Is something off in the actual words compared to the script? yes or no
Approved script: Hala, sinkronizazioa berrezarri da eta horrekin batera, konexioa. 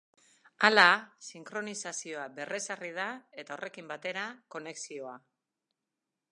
no